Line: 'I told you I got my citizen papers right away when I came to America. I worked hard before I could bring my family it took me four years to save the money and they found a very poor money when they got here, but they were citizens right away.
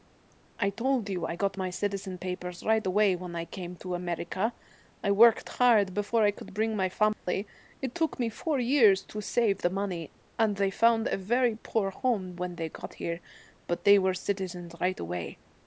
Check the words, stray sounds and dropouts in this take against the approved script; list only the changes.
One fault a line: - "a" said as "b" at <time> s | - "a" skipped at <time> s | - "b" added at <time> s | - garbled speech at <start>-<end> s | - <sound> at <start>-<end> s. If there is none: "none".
- dropout at 7.1-7.3 s
- "money" said as "home" at 11.9 s